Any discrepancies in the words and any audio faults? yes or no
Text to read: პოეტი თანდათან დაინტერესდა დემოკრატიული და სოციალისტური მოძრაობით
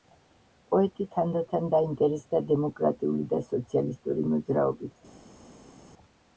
no